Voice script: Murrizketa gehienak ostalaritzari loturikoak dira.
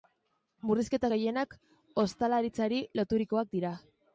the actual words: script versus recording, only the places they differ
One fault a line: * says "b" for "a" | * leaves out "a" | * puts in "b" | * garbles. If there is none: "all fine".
all fine